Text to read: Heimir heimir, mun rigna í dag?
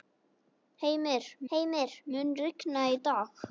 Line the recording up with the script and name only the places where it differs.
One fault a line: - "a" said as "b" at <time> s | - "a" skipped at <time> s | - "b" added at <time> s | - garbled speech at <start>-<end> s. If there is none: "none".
none